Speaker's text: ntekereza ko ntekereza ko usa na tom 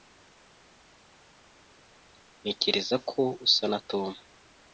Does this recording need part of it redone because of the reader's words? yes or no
yes